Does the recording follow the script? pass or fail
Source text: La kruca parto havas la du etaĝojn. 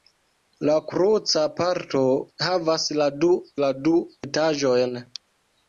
fail